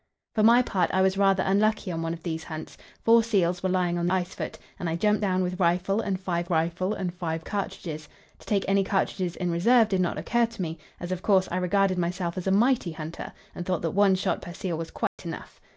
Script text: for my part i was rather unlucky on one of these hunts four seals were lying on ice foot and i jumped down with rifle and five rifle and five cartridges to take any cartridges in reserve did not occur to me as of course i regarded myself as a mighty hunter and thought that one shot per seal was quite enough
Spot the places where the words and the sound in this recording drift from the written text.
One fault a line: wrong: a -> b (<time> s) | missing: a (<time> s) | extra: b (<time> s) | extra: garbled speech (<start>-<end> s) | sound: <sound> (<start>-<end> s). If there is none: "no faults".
sound: dropout (15.1-15.2 s)